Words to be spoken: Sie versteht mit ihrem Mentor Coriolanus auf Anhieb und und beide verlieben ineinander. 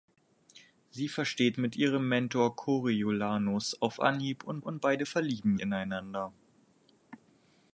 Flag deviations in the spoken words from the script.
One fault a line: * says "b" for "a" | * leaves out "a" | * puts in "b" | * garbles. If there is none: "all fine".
all fine